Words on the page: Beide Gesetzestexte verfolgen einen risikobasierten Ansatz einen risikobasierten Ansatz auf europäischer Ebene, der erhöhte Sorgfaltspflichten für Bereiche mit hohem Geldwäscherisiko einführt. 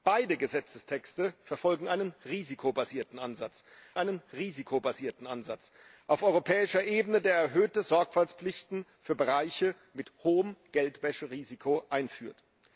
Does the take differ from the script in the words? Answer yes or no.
no